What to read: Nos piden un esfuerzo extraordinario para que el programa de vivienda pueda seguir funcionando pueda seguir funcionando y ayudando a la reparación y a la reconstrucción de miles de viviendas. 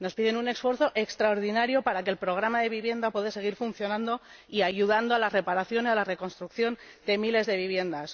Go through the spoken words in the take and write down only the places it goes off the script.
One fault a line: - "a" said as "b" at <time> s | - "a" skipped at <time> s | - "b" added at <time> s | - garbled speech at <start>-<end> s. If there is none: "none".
- "pueda seguir funcionando" skipped at 4.2 s